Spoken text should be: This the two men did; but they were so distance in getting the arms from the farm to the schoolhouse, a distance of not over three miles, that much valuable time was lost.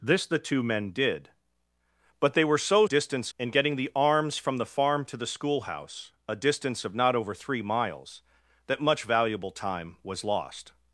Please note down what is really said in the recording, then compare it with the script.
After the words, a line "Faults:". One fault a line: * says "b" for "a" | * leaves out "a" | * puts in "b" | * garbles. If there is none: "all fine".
This the two men did; but they were so distance in getting the arms from the farm to the schoolhouse, a distance of not over three miles, that much valuable time was lost.
Faults:
all fine